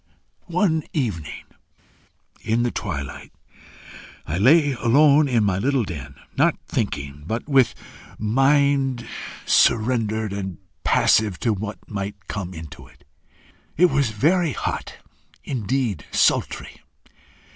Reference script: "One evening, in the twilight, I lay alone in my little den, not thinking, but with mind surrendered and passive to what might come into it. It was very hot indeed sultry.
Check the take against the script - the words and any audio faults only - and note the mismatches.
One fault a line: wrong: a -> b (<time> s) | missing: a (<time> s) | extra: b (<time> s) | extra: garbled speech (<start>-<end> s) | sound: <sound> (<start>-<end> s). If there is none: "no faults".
no faults